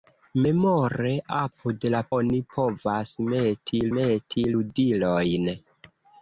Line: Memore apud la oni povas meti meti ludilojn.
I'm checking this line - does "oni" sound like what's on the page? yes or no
yes